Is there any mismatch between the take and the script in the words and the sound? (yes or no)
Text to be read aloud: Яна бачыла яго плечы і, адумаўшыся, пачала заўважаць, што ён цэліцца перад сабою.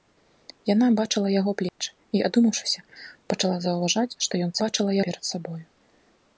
yes